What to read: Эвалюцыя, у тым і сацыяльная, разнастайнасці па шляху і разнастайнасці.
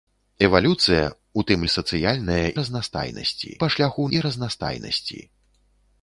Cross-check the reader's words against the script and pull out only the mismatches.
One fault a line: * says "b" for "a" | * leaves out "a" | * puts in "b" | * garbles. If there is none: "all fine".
all fine